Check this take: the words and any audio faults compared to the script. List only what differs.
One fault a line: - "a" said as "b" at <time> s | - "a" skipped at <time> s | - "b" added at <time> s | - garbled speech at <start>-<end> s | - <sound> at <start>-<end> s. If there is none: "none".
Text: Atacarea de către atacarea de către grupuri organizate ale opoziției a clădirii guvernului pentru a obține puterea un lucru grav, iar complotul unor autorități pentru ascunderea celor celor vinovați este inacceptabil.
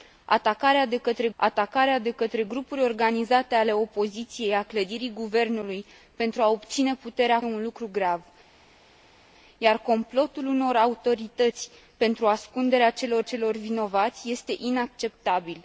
none